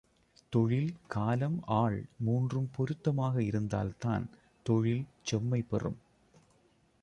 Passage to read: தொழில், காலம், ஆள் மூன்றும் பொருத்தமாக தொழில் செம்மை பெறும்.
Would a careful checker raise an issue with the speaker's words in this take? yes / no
yes